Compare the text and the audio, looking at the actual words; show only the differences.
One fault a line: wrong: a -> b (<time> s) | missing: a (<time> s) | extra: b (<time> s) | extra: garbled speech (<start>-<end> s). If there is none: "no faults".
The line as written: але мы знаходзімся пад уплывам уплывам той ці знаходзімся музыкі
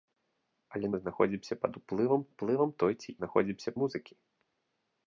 no faults